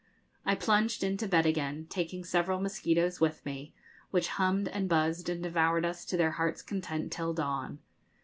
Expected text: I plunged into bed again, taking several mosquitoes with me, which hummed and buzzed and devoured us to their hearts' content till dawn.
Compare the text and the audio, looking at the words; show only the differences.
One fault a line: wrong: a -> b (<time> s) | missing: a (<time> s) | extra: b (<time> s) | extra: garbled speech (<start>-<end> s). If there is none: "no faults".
no faults